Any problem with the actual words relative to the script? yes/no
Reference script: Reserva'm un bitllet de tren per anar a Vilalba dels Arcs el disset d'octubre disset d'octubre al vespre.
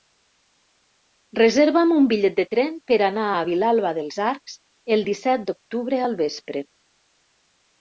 yes